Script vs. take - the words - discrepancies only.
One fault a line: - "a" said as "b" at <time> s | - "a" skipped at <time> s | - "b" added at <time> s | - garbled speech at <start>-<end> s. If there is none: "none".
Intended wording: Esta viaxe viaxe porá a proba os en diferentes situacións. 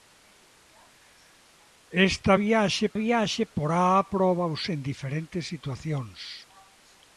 none